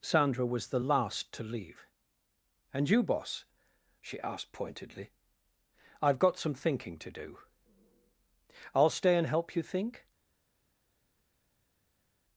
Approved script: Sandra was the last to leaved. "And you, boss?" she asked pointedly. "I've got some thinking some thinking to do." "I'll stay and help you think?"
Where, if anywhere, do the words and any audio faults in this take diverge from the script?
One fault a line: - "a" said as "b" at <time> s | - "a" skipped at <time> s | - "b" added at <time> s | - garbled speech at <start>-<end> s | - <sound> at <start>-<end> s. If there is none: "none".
- "leaved" said as "leave" at 1.4 s
- "some thinking" skipped at 7.0 s